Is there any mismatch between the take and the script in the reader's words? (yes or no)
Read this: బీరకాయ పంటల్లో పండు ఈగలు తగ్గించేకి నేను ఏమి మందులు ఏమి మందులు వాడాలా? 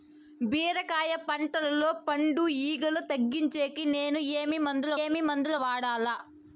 no